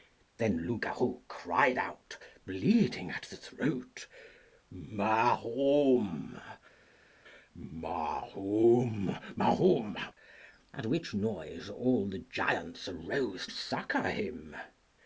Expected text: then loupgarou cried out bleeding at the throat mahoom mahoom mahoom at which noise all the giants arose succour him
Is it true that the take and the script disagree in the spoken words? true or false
false